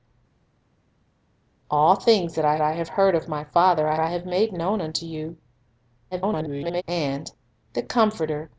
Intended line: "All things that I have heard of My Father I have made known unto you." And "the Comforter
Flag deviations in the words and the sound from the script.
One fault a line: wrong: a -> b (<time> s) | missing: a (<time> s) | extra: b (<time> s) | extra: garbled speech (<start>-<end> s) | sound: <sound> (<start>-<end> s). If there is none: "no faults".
extra: I (2.6 s)
extra: I (4.0 s)
extra: garbled speech (6.1-6.8 s)